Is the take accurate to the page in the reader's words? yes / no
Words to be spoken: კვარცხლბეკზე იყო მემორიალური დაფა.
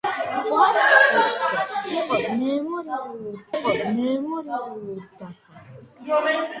no